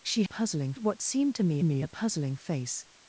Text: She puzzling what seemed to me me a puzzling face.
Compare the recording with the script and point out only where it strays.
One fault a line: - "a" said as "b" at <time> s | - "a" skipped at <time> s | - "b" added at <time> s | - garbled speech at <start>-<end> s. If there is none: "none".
none